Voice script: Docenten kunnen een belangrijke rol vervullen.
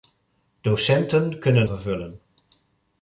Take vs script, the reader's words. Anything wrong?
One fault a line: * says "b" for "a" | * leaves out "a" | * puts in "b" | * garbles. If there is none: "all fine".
* leaves out "een belangrijke rol"